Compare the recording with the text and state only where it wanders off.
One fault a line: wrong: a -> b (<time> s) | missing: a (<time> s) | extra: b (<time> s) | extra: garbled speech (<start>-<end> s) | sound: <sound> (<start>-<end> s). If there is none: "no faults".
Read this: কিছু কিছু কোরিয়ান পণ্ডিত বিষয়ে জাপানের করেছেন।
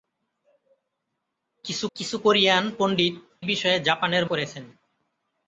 no faults